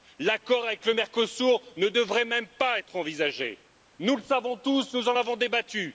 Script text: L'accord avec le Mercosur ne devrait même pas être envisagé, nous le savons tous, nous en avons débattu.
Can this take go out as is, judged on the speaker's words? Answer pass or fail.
pass